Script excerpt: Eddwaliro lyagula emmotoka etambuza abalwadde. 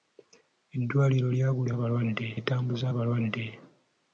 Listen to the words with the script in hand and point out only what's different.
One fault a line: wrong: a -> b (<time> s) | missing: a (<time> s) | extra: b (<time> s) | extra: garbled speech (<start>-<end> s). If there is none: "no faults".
wrong: emmotoka -> abalwadde (1.7 s)